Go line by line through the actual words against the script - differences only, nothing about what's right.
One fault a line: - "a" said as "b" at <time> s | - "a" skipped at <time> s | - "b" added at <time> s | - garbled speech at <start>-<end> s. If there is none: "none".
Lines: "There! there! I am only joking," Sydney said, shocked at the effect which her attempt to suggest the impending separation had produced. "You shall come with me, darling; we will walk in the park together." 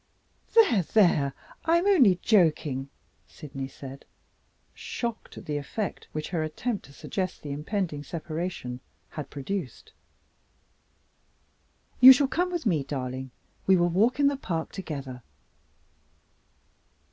none